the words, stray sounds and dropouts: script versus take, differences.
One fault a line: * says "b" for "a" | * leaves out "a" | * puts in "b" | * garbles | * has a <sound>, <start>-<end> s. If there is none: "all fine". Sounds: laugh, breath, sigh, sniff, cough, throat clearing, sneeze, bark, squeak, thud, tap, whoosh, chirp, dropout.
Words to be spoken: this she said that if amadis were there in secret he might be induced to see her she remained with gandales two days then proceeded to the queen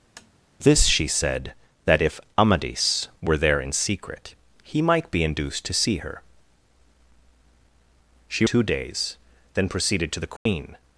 * has a tap, 0.2-0.3 s
* leaves out "remained with gandales"
* has a dropout, 10.4-10.5 s